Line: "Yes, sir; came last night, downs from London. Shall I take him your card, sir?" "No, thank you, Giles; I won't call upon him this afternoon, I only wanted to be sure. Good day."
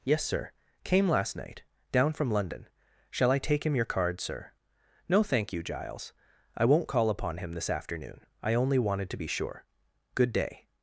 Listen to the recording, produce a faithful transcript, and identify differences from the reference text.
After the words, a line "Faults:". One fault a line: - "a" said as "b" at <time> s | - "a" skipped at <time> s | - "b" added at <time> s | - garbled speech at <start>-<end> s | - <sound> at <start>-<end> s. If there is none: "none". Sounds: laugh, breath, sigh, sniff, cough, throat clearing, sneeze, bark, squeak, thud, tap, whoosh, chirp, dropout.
"Yes, sir; came last night, down from London. Shall I take him your card, sir?" "No, thank you, Giles; I won't call upon him this afternoon, I only wanted to be sure. Good day."
Faults:
- "downs" said as "down" at 1.9 s